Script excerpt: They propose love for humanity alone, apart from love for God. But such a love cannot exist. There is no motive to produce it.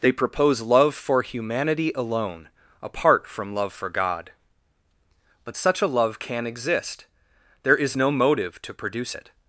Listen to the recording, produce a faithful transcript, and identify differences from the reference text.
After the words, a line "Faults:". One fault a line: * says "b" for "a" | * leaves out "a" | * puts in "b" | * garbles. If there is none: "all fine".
They propose love for humanity alone, apart from love for God. But such a love can exist. There is no motive to produce it.
Faults:
* says "can" for "cannot"